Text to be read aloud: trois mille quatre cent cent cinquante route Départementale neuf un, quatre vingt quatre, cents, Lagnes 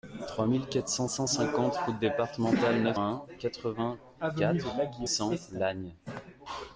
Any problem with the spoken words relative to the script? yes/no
no